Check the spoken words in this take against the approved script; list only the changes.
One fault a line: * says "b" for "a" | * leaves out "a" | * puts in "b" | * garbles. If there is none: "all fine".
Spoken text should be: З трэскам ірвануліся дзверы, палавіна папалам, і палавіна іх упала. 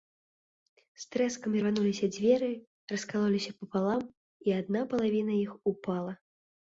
* says "раскалоліся" for "палавіна"
* puts in "адна"